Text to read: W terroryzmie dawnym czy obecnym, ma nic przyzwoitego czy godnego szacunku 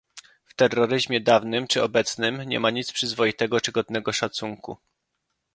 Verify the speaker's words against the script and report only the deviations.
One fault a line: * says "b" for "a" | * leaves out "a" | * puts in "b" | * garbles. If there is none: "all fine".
* puts in "nie"